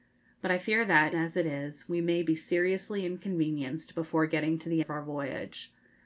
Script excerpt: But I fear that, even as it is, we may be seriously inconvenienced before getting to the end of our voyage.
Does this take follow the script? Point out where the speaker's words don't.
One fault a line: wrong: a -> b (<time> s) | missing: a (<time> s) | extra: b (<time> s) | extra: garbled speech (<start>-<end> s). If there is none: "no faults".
missing: even (1.1 s)
missing: end (4.8 s)